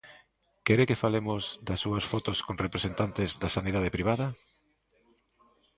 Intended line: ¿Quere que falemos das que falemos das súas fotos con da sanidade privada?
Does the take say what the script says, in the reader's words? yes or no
no